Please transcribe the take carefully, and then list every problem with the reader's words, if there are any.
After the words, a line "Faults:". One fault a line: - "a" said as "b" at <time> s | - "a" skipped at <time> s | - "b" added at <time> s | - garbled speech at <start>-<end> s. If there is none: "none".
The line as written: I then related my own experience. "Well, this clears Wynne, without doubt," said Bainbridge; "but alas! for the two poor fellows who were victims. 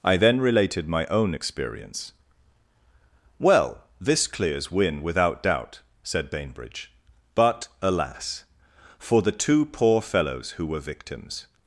I then related my own experience. "Well, this clears Wynne, without doubt," said Bainbridge; "but alas! for the two poor fellows who were victims.
Faults:
none